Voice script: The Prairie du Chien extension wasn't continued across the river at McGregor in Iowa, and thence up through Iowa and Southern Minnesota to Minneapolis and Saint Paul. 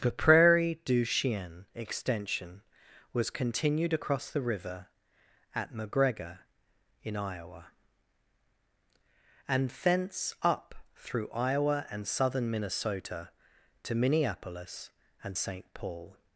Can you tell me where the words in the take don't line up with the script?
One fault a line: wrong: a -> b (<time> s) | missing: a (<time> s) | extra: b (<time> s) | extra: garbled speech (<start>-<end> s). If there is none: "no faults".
wrong: wasn't -> was (3.1 s)